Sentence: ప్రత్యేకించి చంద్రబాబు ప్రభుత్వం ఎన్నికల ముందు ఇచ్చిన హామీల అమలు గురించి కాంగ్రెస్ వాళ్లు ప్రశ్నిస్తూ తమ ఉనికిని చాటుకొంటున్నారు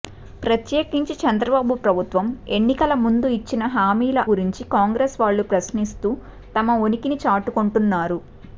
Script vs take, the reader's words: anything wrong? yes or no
yes